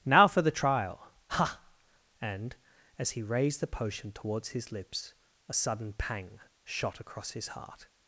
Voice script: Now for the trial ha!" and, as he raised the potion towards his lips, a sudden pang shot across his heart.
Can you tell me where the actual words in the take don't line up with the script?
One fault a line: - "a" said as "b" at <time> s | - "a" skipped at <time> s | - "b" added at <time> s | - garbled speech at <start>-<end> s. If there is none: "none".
none